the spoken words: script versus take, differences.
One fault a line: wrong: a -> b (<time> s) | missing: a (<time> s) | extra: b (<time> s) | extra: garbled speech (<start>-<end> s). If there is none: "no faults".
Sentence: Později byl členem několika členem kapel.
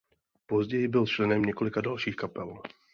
wrong: členem -> dalších (1.8 s)